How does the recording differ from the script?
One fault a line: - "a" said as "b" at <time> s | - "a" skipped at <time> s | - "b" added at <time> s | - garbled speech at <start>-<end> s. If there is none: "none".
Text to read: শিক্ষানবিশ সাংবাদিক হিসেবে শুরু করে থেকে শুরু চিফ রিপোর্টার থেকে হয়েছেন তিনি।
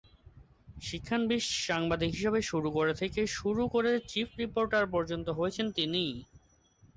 - "করে" added at 3.7 s
- "থেকে" said as "পর্যন্ত" at 4.9 s